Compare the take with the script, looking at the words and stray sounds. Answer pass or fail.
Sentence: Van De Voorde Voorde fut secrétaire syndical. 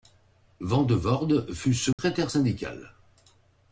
fail